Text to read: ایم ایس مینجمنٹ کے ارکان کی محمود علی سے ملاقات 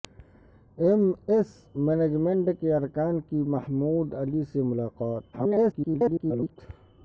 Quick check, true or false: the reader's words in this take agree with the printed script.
false